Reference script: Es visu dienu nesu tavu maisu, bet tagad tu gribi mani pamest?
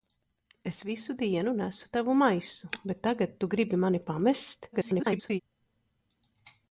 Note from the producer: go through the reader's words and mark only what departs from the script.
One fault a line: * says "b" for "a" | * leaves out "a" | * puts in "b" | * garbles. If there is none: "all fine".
* garbles